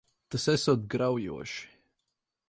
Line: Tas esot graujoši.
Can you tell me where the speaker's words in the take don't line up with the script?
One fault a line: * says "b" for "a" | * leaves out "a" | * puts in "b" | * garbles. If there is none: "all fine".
all fine